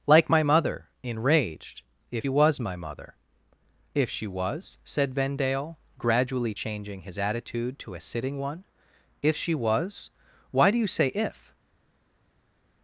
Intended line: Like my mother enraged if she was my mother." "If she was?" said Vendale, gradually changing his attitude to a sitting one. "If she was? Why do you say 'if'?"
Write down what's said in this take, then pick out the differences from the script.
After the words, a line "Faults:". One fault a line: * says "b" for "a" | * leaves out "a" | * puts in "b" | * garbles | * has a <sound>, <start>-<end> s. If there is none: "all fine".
Like my mother enraged if was my mother." "If she was?" said Vendale, gradually changing his attitude to a sitting one. "If she was? Why do you say 'if'?"
Faults:
* leaves out "she"